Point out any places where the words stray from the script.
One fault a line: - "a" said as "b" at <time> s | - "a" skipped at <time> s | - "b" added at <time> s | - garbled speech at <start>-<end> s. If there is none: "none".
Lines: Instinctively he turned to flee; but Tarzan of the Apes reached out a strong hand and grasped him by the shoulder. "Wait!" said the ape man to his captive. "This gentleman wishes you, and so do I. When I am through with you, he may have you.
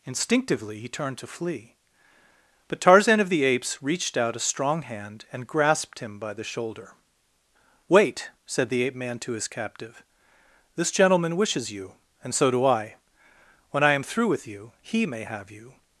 none